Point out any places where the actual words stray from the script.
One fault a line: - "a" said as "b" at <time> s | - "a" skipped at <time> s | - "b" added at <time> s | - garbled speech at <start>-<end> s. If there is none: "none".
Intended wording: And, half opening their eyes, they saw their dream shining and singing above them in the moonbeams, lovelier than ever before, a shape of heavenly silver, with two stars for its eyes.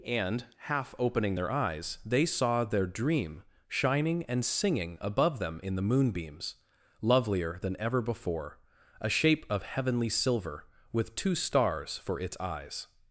none